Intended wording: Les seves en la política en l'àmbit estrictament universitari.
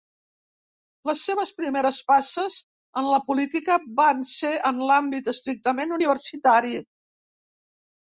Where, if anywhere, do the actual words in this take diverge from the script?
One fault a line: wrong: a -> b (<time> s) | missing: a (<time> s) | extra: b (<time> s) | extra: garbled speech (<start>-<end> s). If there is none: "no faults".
extra: primeres passes (1.6 s)
extra: van ser (4.0 s)